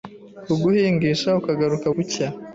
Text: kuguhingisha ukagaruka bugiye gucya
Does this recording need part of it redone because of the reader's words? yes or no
yes